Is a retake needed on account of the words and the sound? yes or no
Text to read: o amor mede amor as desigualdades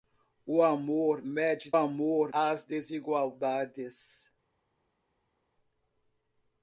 no